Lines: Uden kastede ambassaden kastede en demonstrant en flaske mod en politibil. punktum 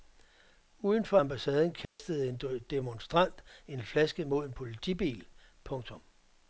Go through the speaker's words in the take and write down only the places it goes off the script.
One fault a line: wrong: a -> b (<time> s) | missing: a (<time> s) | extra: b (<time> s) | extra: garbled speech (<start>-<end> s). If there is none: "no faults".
wrong: kastede -> for (1.1 s)